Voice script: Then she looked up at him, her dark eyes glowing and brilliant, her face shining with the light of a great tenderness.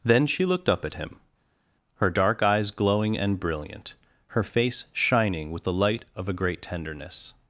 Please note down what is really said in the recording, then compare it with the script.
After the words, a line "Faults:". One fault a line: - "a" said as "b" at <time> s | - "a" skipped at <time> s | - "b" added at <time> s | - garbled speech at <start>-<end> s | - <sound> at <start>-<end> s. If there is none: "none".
Then she looked up at him, her dark eyes glowing and brilliant, her face shining with the light of a great tenderness.
Faults:
none